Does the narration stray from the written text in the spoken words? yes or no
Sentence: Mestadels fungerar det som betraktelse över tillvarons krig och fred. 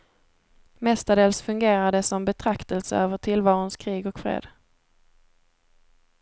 no